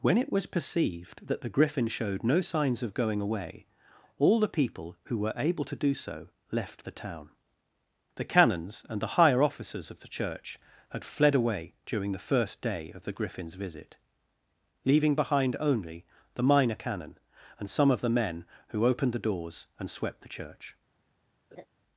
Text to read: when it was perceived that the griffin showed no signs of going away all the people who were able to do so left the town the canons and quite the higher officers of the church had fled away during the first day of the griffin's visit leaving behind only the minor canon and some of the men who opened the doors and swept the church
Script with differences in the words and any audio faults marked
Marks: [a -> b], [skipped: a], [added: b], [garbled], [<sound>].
when it was perceived that the griffin showed no signs of going away all the people who were able to do so left the town the canons and [skipped: quite] the higher officers of the church had fled away during the first day of the griffin's visit leaving behind only the minor canon and some of the men who opened the doors and swept the church [laugh]